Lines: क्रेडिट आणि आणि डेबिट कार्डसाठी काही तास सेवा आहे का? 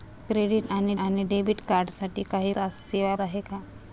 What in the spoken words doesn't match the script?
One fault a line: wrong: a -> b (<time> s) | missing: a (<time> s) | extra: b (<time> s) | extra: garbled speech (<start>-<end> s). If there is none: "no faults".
no faults